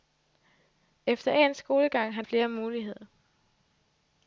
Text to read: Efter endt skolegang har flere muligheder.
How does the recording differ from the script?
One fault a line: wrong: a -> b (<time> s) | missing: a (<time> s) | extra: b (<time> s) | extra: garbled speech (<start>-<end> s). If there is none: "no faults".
no faults